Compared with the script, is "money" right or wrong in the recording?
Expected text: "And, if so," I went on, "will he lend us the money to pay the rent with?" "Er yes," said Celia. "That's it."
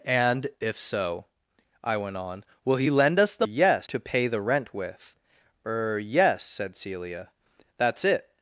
wrong